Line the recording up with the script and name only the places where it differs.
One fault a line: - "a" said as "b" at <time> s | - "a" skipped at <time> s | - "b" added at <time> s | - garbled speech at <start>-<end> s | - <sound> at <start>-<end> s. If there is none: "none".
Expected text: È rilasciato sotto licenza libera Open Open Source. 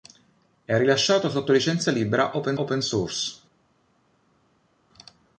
none